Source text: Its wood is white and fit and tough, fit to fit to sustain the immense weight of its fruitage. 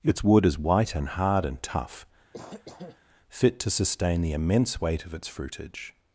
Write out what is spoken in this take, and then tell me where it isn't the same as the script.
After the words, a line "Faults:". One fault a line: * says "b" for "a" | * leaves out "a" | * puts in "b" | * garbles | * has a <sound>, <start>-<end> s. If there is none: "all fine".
Its wood is white and hard and tough, fit to sustain the immense weight of its fruitage.
Faults:
* says "hard" for "fit"
* has a cough, 2.3-3.0 s
* leaves out "fit to"